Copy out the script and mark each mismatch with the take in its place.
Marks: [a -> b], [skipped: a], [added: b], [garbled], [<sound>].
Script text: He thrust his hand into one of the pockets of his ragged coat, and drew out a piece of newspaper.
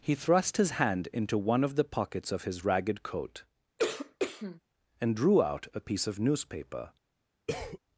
He thrust his hand into one of the pockets of his ragged coat, [cough] and drew out a piece of newspaper. [cough]